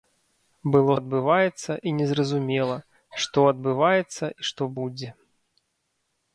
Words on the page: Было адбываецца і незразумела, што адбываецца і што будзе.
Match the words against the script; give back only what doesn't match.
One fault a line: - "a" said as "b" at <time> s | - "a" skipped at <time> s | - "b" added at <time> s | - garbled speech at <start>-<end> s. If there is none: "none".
none